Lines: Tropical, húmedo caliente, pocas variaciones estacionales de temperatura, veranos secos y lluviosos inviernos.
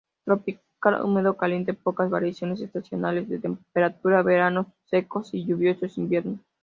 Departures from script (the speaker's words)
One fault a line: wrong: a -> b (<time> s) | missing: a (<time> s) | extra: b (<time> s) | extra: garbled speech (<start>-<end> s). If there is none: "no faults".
no faults